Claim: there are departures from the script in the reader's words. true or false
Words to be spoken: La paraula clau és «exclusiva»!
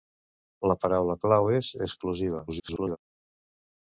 true